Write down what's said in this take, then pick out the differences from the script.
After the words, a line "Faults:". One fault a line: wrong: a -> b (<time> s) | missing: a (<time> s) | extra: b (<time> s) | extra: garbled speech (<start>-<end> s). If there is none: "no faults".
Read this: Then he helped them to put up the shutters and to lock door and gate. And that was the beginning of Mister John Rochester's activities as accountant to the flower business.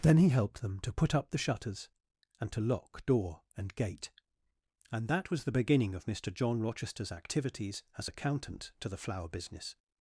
Then he helped them to put up the shutters and to lock door and gate. And that was the beginning of Mister John Rochester's activities as accountant to the flower business.
Faults:
no faults